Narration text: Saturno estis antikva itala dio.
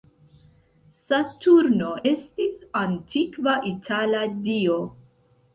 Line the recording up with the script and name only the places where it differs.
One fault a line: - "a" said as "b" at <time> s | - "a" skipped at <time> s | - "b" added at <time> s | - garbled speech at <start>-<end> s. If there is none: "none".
none